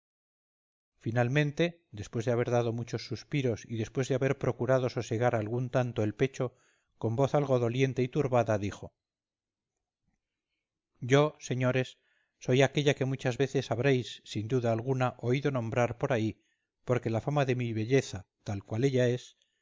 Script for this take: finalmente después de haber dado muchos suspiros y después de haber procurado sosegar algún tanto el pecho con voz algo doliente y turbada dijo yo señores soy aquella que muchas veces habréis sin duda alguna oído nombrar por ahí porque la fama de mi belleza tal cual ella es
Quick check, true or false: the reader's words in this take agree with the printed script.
true